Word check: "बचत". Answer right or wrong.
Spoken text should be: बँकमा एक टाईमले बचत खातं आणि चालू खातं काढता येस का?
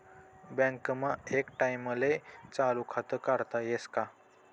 wrong